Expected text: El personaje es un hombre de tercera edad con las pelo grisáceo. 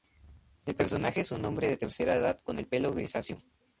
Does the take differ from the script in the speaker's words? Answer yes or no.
yes